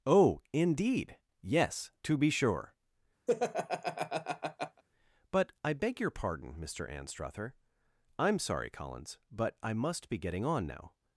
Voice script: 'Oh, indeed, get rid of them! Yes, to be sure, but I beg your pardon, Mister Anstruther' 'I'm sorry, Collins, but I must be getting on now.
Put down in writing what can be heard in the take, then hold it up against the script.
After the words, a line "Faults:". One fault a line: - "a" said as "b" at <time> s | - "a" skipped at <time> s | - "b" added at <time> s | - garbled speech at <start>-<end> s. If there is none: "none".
'Oh, indeed, Yes, to be sure, but I beg your pardon, Mister Anstruther' 'I'm sorry, Collins, but I must be getting on now.
Faults:
- "get rid of them" skipped at 1.2 s